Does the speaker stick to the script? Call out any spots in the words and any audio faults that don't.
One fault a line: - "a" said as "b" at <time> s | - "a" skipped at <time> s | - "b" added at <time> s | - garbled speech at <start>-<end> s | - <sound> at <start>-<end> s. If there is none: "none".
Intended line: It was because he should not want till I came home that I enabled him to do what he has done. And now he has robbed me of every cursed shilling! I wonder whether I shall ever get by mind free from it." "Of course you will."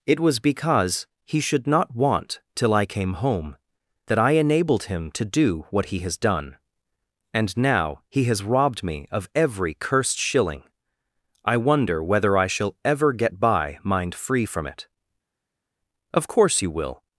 none